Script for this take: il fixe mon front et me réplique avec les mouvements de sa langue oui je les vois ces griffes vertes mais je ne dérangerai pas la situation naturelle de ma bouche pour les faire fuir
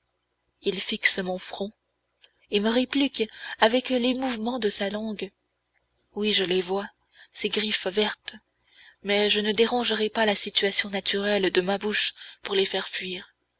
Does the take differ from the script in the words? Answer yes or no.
no